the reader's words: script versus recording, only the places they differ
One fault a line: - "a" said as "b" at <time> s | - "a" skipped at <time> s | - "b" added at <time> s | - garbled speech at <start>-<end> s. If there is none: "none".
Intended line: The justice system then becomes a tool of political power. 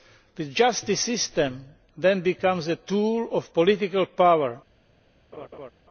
none